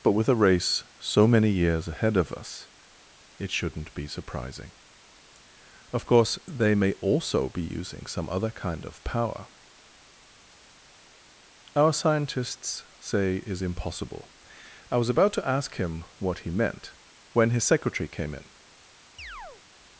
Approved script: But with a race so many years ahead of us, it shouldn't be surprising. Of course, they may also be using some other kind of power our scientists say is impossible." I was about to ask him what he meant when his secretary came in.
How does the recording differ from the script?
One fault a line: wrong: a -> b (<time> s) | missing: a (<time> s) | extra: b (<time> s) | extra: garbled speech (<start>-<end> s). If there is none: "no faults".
no faults